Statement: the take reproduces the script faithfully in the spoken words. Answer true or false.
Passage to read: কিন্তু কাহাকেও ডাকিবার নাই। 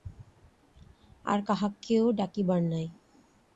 false